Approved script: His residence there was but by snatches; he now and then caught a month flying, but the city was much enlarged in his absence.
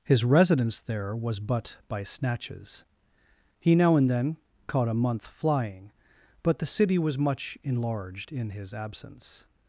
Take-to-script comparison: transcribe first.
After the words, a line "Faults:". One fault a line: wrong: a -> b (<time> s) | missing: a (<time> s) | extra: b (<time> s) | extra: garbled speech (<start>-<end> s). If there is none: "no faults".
His residence there was but by snatches; he now and then caught a month flying, but the city was much enlarged in his absence.
Faults:
no faults